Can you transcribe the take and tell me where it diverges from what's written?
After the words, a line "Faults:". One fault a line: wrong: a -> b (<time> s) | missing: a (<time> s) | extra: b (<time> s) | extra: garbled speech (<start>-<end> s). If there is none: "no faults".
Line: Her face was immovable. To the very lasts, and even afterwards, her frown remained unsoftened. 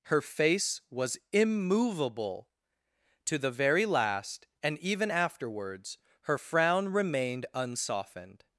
Her face was immovable. To the very last, and even afterwards, her frown remained unsoftened.
Faults:
wrong: lasts -> last (3.9 s)